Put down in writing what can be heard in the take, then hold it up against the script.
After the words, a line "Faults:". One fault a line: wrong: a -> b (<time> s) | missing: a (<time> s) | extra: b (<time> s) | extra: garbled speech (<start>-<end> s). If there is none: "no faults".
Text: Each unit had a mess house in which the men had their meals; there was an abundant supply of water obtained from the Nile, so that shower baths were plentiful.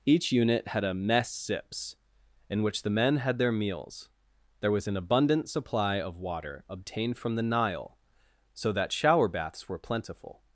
Each unit had a mess sips in which the men had their meals; there was an abundant supply of water obtained from the Nile, so that shower baths were plentiful.
Faults:
wrong: house -> sips (1.3 s)